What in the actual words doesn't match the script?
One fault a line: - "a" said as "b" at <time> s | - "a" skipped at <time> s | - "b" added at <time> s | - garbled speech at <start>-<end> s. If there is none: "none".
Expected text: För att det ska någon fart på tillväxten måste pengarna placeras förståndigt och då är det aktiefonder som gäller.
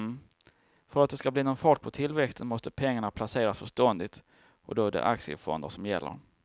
- "bli" added at 1.3 s